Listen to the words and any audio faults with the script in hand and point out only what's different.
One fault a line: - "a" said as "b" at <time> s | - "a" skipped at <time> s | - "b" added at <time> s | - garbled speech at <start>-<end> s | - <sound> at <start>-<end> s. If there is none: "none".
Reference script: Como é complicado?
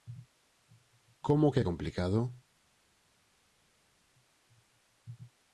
- "que" added at 1.5 s